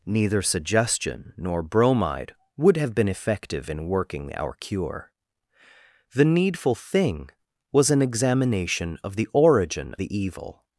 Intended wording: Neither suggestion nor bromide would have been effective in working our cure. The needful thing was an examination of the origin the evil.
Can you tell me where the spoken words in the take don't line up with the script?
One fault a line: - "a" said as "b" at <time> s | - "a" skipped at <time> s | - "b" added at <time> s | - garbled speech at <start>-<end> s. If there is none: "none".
none